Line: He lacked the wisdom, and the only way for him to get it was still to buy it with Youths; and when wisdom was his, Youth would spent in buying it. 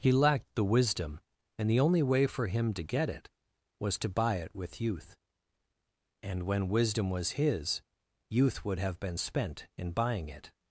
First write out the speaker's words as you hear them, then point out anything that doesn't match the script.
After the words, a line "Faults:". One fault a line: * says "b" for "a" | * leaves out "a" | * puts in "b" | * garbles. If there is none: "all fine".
He lacked the wisdom, and the only way for him to get it was to buy it with Youth; and when wisdom was his, Youth would have been spent in buying it.
Faults:
* leaves out "still"
* says "Youth" for "Youths"
* puts in "have been"